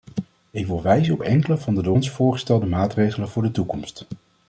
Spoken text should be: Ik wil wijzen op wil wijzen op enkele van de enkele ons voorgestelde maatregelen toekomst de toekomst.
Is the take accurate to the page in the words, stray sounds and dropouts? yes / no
no